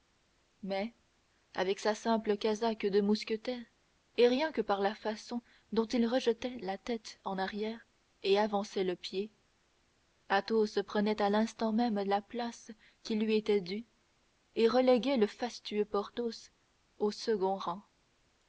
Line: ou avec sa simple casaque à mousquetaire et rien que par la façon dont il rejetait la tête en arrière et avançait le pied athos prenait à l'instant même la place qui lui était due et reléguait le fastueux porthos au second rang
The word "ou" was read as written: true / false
false